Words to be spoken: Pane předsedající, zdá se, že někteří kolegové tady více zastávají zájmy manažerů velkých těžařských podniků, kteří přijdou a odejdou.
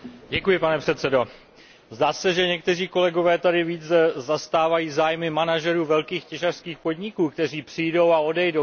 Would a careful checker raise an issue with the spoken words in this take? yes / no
no